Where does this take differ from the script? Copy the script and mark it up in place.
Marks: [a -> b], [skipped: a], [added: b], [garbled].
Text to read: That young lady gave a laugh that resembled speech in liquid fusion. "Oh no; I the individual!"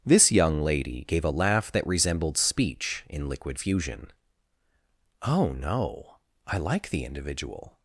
[That -> This] young lady gave a laugh that resembled speech in liquid fusion. "Oh no; I [added: like] the individual!"